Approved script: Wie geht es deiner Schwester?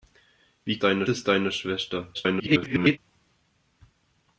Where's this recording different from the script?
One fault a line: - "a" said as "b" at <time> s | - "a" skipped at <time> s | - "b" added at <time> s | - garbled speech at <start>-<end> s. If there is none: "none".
- "geht" said as "deiner" at 0.8 s
- garbled speech at 2.1-3.0 s